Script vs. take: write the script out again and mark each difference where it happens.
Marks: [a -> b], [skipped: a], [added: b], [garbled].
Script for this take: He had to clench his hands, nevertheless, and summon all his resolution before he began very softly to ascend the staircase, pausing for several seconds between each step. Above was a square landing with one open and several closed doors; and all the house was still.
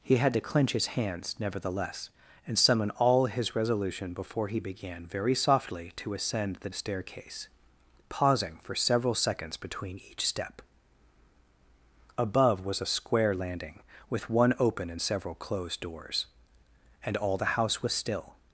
He had to clench his hands, nevertheless, and summon all his resolution before he began very softly to ascend the staircase, pausing for several seconds between each step. Above was a square landing with one open and several closed doors; and all the house was still.